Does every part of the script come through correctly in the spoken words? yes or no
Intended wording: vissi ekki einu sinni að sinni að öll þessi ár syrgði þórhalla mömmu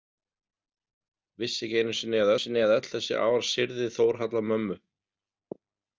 yes